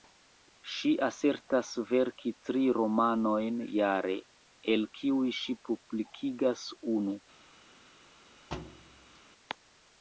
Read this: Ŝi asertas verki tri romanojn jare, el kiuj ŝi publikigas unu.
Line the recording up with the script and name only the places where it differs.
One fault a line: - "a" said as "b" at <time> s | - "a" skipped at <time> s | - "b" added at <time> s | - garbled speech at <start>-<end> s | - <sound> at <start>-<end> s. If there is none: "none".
- thud at 8.5-9.2 s